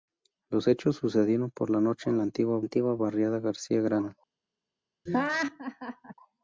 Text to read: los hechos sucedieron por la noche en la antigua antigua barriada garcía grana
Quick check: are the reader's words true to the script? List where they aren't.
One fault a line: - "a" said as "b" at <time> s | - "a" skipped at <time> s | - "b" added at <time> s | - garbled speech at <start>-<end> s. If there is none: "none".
none